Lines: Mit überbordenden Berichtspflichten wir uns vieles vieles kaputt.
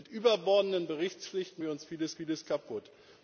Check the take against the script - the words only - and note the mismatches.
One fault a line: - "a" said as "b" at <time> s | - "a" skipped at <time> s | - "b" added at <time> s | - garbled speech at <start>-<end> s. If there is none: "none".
none